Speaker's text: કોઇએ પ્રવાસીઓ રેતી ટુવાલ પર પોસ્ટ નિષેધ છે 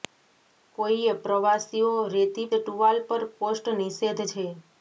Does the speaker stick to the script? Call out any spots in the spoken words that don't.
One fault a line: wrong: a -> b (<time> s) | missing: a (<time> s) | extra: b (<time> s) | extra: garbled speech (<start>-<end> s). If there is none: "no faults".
no faults